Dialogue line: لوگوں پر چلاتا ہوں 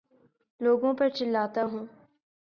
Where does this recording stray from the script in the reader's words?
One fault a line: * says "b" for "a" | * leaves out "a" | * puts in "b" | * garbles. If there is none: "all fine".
all fine